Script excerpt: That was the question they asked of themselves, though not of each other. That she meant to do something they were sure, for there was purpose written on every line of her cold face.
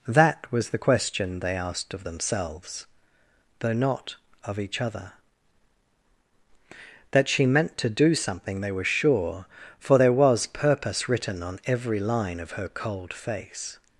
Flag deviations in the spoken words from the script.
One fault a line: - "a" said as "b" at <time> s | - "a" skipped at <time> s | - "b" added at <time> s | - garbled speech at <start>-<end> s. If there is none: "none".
none